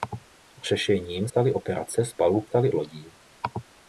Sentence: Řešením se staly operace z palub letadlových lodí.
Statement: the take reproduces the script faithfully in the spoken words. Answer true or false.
false